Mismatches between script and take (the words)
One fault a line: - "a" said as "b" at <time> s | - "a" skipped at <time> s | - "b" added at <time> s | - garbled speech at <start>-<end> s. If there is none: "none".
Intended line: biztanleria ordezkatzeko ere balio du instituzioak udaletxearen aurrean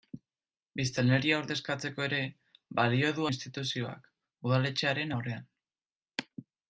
none